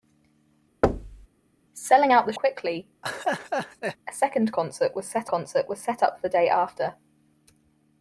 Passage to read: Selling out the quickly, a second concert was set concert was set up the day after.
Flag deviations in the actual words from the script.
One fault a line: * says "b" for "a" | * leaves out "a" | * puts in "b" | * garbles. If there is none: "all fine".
all fine